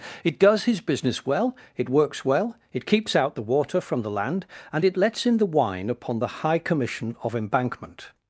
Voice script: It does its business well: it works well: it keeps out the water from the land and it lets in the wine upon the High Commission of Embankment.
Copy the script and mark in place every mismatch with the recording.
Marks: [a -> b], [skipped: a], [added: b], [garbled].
It does [its -> his] business well: it works well: it keeps out the water from the land and it lets in the wine upon the High Commission of Embankment.